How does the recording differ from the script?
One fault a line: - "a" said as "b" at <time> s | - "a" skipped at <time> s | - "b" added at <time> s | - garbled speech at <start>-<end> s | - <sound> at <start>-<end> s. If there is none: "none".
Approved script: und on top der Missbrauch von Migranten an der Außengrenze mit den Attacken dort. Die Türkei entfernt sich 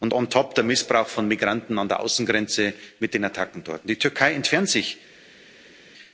none